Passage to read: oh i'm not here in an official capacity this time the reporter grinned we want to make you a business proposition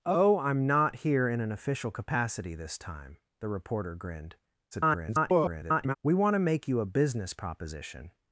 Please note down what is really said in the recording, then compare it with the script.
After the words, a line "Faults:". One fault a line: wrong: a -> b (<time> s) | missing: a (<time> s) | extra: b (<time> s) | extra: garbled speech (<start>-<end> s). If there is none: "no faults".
oh i'm not here in an official capacity this time the reporter grinned [garbled] we want to make you a business proposition
Faults:
extra: garbled speech (4.7-6.0 s)